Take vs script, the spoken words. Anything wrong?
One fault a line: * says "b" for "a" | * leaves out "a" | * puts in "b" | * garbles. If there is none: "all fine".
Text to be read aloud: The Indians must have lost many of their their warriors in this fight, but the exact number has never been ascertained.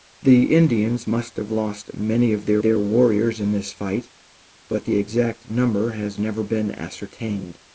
all fine